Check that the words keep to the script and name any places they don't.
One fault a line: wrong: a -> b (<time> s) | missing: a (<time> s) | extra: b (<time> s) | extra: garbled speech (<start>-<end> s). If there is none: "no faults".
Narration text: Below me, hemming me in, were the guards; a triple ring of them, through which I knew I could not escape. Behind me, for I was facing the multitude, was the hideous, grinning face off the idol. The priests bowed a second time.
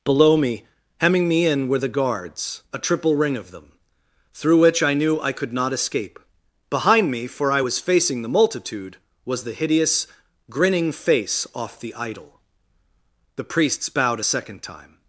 no faults